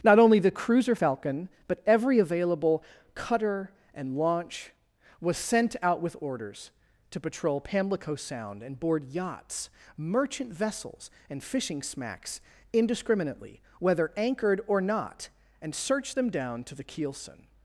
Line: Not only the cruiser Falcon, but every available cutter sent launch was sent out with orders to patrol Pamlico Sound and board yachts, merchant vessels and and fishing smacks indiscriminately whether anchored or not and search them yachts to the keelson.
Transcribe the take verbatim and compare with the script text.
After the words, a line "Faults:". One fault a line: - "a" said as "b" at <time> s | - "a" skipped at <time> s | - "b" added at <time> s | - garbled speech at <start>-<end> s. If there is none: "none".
Not only the cruiser Falcon, but every available cutter and launch was sent out with orders to patrol Pamlico Sound and board yachts, merchant vessels and fishing smacks indiscriminately whether anchored or not and search them down to the keelson.
Faults:
- "sent" said as "and" at 3.9 s
- "and" skipped at 11.4 s
- "yachts" said as "down" at 16.3 s